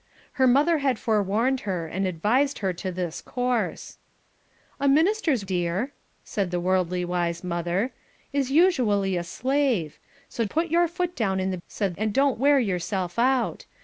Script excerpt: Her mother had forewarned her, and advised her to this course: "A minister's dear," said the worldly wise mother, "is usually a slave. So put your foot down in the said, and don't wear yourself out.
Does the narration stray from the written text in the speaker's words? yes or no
no